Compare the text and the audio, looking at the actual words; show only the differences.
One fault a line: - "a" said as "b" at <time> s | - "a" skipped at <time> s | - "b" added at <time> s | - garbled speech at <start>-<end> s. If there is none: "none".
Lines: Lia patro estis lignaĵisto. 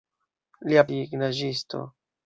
- "patro estis" skipped at 0.8 s